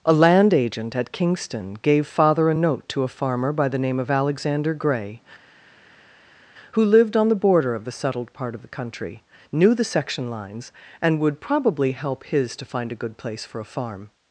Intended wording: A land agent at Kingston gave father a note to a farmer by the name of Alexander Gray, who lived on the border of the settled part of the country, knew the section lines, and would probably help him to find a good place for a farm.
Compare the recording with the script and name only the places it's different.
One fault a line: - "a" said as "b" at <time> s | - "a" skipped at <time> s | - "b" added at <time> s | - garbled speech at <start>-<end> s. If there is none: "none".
- "him" said as "his" at 12.2 s